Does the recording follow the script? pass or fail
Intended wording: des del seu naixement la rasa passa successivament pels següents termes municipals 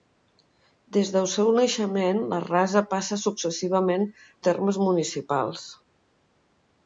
fail